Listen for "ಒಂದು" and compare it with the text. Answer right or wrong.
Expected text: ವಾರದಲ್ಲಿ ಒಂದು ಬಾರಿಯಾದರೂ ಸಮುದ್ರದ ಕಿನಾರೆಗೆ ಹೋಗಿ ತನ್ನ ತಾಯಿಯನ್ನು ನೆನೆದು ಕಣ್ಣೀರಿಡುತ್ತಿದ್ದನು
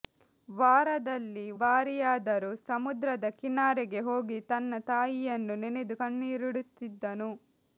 wrong